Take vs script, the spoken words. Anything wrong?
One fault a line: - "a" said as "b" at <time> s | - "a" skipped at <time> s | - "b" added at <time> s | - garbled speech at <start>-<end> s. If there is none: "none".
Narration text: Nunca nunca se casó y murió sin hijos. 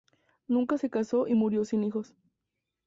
- "nunca" skipped at 0.8 s